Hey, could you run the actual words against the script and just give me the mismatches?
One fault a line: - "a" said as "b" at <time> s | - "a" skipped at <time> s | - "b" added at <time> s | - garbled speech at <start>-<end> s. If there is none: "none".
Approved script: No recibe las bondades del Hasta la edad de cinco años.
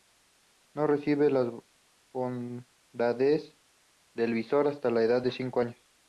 - "Visor" added at 4.3 s